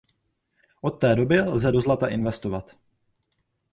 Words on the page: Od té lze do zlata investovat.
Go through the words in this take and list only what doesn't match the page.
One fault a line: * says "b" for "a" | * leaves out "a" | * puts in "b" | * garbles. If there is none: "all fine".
* puts in "doby"